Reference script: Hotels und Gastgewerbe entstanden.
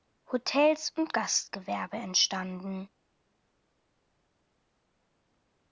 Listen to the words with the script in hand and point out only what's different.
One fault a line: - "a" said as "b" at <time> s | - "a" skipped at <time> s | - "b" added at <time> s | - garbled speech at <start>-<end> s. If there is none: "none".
none